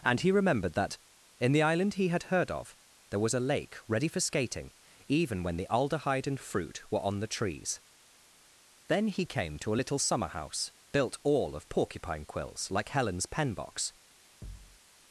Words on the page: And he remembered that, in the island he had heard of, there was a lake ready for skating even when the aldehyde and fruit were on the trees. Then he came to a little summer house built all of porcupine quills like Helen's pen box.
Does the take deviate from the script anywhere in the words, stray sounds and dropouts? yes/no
yes